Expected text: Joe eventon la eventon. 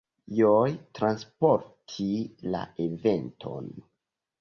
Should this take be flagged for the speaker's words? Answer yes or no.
yes